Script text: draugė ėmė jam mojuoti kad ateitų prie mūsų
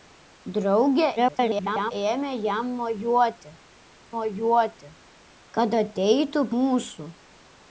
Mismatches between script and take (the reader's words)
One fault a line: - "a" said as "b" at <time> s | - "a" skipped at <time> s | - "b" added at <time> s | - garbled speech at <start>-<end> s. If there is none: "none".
- garbled speech at 1.2-1.9 s
- "mojuoti" added at 4.1 s
- "prie" skipped at 6.4 s